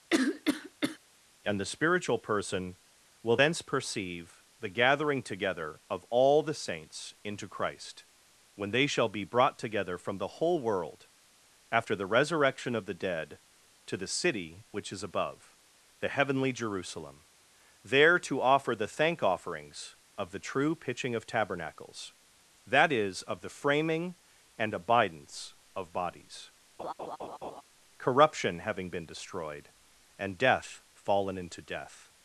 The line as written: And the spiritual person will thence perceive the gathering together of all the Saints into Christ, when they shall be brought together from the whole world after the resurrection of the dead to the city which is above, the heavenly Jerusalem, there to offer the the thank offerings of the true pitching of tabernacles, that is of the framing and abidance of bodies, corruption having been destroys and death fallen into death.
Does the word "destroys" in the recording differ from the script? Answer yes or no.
yes